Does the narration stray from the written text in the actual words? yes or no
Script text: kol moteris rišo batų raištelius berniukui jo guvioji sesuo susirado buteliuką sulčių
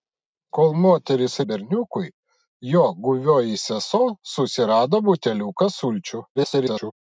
yes